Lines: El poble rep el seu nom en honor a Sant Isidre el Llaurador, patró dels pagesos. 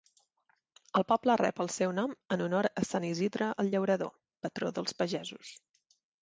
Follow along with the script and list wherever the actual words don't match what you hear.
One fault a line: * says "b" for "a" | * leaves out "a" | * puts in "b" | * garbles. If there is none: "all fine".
all fine